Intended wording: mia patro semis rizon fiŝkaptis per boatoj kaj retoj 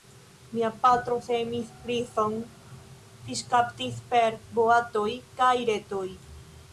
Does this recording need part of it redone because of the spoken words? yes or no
no